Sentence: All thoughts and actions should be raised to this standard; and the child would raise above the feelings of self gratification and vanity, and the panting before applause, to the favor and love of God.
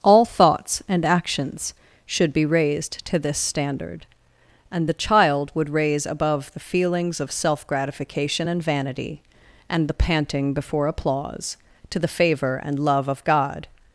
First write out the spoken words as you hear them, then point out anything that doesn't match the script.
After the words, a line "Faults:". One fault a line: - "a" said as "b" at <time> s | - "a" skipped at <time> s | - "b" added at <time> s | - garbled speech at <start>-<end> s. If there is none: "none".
All thoughts and actions should be raised to this standard; and the child would raise above the feelings of self gratification and vanity, and the panting before applause, to the favor and love of God.
Faults:
none